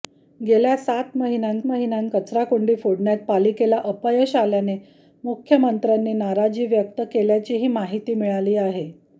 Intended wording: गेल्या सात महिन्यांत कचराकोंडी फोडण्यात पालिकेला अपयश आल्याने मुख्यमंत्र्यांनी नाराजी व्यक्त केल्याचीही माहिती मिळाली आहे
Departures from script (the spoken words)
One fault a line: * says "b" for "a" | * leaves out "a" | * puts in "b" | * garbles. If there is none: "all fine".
* puts in "महिन्यांत"